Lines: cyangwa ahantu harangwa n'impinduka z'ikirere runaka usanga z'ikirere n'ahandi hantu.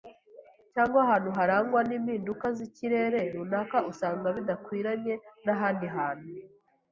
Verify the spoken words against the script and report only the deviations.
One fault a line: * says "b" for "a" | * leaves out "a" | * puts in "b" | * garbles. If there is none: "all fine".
* says "bidakwiranye" for "z'ikirere"